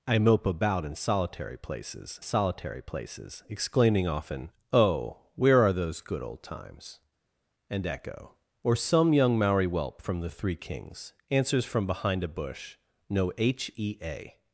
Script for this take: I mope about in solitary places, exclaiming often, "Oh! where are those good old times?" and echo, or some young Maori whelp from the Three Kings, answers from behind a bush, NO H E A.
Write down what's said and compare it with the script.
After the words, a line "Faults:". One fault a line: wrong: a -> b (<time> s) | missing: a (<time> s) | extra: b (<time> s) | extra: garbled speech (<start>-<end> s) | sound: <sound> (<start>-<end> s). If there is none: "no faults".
I mope about in solitary places solitary places, exclaiming often, "Oh! where are those good old times?" and echo, or some young Maori whelp from the Three Kings, answers from behind a bush, NO H E A.
Faults:
extra: solitary places (2.2 s)